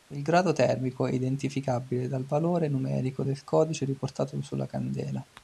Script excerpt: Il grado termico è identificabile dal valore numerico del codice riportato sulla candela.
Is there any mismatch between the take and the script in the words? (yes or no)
no